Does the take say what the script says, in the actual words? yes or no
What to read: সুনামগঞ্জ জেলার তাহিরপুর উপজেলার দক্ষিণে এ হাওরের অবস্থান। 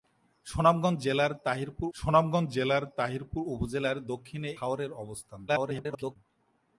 no